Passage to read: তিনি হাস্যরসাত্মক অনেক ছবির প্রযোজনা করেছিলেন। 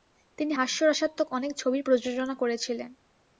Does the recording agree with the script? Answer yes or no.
yes